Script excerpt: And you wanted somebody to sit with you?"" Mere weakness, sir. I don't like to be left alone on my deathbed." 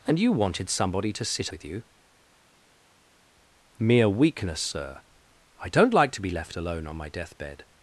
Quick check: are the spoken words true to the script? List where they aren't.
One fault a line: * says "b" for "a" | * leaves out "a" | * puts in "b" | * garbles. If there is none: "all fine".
all fine